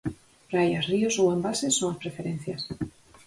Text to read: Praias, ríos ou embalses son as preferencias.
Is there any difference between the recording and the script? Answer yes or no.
no